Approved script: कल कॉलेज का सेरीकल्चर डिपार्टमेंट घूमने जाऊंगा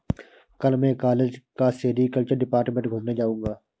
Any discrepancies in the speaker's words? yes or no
yes